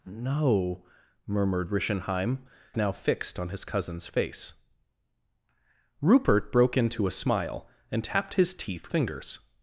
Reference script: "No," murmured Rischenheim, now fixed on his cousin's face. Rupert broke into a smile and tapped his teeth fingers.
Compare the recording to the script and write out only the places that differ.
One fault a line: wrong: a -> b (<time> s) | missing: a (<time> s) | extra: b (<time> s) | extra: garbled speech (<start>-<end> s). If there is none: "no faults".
no faults